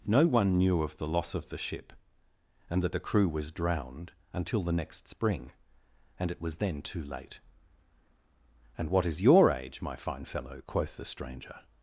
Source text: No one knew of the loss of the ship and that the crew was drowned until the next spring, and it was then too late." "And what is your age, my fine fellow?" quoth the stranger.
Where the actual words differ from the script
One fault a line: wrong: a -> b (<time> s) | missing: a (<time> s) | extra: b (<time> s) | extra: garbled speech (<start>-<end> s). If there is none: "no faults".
no faults